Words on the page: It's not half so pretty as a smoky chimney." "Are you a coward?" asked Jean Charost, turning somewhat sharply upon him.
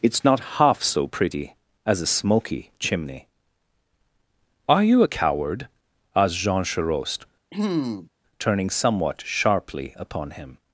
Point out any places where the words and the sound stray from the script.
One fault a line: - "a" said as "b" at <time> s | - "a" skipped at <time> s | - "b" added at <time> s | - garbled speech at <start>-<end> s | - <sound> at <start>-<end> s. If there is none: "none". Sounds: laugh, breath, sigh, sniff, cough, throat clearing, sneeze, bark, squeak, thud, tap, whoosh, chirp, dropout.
- throat clearing at 7.5-8.1 s